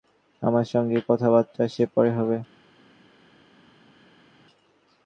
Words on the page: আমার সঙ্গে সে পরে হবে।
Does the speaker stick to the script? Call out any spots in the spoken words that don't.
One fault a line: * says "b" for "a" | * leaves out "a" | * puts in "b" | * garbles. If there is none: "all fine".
* puts in "কথাবার্তা"